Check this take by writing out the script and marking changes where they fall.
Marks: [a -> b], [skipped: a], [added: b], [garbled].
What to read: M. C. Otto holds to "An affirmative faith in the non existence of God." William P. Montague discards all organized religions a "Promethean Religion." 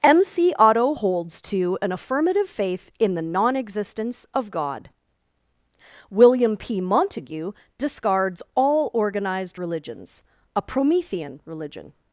M. C. Otto holds to "An affirmative faith in the non existence of God." William P. Montague discards all organized religions a "Promethean Religion."